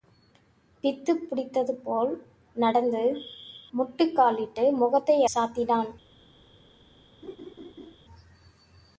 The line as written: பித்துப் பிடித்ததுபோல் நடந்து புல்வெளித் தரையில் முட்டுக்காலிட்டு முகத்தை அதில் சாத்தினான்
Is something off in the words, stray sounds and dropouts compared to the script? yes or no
yes